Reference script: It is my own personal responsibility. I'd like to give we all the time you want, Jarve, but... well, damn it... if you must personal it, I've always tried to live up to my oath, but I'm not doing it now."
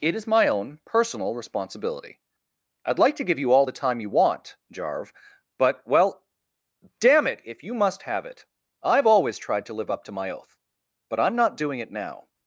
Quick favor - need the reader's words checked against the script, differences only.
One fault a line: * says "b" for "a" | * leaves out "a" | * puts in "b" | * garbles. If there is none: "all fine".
* says "you" for "we"
* says "have" for "personal"